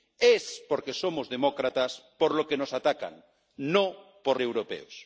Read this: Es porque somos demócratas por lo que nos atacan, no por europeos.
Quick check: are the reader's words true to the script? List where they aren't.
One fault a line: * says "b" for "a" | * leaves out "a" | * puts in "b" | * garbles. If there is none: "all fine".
all fine